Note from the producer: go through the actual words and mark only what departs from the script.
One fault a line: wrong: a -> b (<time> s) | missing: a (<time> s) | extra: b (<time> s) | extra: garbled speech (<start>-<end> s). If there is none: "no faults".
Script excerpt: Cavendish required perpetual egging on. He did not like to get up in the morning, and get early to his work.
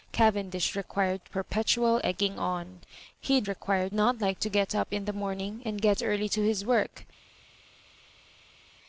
wrong: did -> required (3.5 s)